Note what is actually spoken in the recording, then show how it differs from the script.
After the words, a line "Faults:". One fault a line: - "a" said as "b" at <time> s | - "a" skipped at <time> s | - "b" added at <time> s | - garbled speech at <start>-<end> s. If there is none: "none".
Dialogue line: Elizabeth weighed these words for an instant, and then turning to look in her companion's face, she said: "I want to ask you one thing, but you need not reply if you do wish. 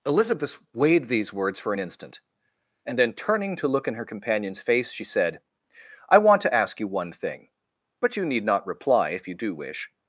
Elizabeth weighed these words for an instant, and then turning to look in her companion's face, she said: "I want to ask you one thing, but you need not reply if you do wish.
Faults:
none